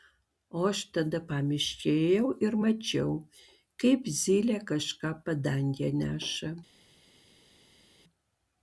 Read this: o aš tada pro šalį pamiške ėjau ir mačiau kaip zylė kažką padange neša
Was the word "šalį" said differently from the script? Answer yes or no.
yes